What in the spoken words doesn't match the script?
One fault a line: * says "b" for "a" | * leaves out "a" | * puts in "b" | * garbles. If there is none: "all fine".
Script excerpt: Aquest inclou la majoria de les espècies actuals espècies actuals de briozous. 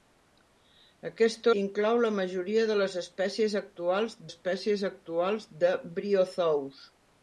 all fine